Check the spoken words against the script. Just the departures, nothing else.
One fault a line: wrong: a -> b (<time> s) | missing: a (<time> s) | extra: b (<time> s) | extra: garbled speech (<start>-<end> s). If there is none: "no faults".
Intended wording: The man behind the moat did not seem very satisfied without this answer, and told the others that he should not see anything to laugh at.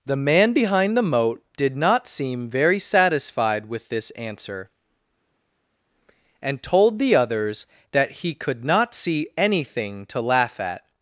wrong: without -> with (3.7 s)
wrong: should -> could (8.3 s)